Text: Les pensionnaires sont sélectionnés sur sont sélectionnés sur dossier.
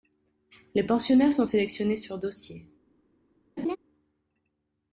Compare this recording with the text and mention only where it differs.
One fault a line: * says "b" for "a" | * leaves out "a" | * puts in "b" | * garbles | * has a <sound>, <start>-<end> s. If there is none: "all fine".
* leaves out "sont sélectionnés sur"
* has a laugh, 3.6-3.8 s